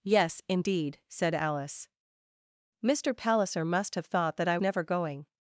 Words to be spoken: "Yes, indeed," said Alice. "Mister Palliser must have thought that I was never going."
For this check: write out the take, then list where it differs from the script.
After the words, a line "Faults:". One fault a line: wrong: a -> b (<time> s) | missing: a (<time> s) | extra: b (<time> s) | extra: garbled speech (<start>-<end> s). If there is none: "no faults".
"Yes, indeed," said Alice. "Mister Palliser must have thought that I never going."
Faults:
missing: was (4.6 s)